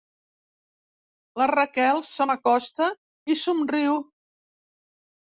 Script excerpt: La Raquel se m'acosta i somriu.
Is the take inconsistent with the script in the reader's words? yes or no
no